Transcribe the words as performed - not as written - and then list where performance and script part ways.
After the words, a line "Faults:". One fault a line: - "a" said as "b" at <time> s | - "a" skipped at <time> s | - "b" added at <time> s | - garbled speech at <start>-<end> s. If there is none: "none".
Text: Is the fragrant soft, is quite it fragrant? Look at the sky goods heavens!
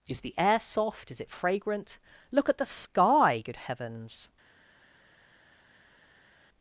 Is the air soft, is it fragrant? Look at the sky good heavens!
Faults:
- "fragrant" said as "air" at 0.4 s
- "quite" skipped at 1.2 s
- "goods" said as "good" at 3.5 s